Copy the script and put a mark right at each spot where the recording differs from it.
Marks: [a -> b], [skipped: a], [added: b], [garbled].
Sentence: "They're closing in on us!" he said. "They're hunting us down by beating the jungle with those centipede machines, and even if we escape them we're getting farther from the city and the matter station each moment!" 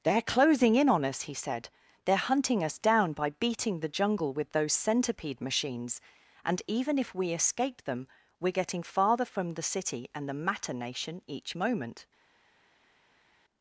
"They're closing in on us!" he said. "They're hunting us down by beating the jungle with those centipede machines, and even if we escape them we're getting farther from the city and the matter [station -> nation] each moment!"